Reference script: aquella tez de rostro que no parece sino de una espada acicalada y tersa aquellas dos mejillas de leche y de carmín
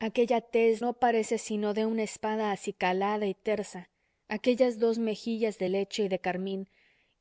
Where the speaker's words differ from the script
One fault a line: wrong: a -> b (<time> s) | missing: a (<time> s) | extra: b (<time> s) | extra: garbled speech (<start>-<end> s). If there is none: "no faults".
missing: de rostro que (0.8 s)